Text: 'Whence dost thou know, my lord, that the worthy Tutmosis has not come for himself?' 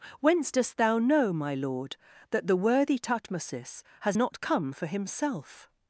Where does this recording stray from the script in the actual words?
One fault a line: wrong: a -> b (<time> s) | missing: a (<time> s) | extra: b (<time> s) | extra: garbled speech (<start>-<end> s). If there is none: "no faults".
no faults